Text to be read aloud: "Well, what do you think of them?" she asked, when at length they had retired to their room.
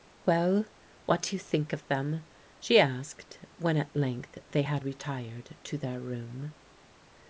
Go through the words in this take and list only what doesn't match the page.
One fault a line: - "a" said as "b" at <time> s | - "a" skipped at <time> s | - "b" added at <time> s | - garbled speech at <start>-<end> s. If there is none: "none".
none